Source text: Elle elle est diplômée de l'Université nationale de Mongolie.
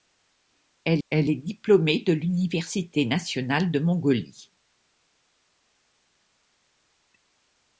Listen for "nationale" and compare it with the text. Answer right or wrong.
right